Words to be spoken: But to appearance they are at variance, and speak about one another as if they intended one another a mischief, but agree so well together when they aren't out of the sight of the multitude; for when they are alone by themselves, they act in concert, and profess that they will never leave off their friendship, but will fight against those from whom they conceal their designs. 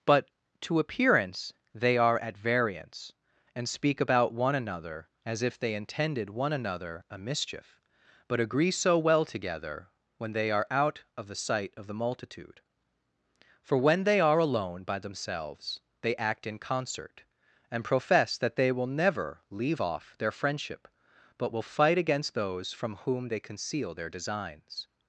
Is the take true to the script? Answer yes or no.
no